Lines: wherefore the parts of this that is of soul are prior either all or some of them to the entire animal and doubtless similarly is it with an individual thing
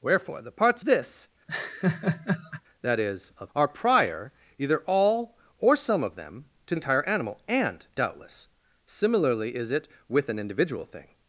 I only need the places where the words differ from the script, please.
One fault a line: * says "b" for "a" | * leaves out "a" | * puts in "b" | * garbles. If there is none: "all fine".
* leaves out "of"
* leaves out "soul"
* leaves out "the"